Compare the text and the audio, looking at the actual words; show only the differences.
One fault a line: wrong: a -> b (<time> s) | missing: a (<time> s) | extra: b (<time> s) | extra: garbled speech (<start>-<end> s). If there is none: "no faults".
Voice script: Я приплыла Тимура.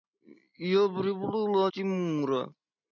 no faults